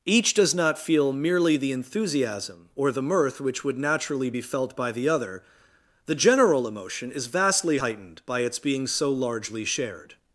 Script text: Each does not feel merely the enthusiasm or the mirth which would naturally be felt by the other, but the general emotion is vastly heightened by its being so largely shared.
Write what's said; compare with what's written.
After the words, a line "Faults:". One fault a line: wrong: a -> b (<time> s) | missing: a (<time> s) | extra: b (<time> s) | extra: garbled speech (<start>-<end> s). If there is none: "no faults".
Each does not feel merely the enthusiasm or the mirth which would naturally be felt by the other, the general emotion is vastly heightened by its being so largely shared.
Faults:
missing: but (5.4 s)